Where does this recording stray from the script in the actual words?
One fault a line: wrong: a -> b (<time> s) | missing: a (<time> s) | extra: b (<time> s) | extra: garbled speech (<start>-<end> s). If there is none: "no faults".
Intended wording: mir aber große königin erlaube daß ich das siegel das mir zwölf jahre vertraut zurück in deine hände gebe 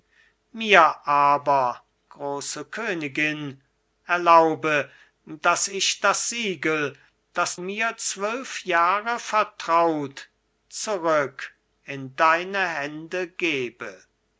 no faults